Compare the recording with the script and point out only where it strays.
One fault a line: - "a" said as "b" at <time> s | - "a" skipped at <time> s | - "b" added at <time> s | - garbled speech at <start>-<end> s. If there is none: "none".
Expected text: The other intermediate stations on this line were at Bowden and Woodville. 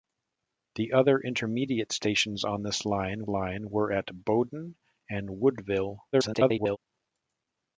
- "line" added at 3.3 s
- garbled speech at 6.1-6.8 s